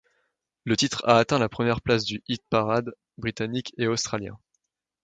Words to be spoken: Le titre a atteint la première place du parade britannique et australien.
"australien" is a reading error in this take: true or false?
false